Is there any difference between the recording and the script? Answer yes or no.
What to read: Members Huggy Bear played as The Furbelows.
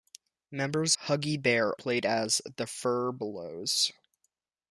no